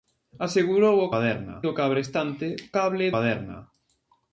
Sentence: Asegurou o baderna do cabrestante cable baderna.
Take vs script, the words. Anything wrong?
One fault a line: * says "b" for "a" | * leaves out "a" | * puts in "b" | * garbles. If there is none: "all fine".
all fine